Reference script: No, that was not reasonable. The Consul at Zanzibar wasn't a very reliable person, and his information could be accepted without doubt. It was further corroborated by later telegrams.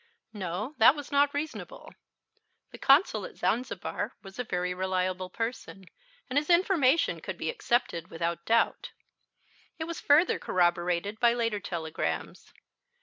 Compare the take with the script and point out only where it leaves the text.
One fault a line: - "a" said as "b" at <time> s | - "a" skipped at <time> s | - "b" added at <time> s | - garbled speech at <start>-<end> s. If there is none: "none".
- "wasn't" said as "was" at 4.2 s